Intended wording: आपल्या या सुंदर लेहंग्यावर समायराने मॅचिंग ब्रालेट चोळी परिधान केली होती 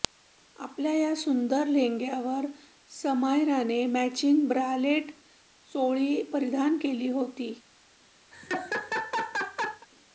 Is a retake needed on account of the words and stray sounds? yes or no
yes